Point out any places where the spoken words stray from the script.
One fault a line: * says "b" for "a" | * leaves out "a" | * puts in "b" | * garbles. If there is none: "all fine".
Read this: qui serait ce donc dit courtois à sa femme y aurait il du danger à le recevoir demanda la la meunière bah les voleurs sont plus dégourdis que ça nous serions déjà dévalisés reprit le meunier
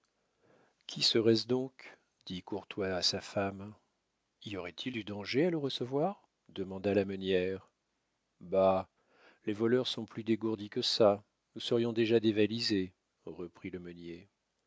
* leaves out "la"